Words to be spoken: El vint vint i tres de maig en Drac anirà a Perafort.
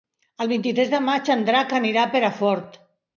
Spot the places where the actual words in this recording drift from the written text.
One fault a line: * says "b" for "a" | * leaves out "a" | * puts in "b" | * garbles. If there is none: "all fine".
* leaves out "vint"